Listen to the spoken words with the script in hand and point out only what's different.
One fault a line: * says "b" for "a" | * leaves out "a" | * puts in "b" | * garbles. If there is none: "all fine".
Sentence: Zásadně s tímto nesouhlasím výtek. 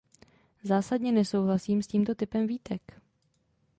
* puts in "nesouhlasím"
* says "typem" for "nesouhlasím"